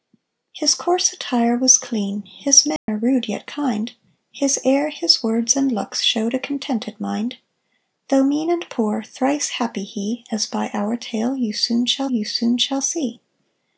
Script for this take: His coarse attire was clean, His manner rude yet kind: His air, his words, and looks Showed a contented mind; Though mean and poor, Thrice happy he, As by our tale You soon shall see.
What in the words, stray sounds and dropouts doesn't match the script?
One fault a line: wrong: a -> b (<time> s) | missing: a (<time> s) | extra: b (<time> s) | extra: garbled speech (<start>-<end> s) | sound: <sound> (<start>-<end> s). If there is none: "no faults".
sound: dropout (2.8-2.9 s)
extra: You soon shall (12.1 s)